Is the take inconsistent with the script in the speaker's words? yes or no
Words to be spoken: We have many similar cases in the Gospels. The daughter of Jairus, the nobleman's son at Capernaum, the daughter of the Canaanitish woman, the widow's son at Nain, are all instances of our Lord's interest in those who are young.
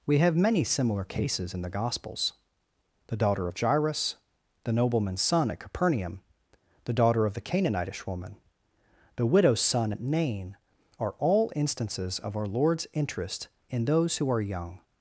no